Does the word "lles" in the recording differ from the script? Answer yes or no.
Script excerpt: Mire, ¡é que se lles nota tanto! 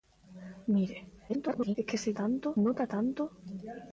yes